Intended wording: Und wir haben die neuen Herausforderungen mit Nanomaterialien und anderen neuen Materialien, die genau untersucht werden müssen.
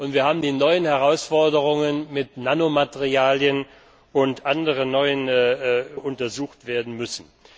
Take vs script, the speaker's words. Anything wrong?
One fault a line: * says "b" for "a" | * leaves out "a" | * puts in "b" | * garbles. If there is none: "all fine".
* leaves out "Materialien die genau"